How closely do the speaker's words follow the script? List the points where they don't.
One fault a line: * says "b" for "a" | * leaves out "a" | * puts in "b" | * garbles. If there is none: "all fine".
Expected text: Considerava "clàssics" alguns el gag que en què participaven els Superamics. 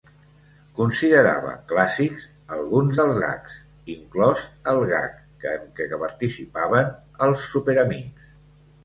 * puts in "dels gags inclòs"